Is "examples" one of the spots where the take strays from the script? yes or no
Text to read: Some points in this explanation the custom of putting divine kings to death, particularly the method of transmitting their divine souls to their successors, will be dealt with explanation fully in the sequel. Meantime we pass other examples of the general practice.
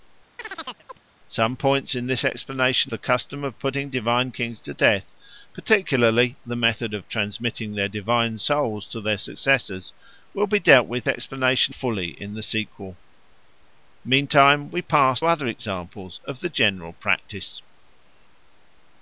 no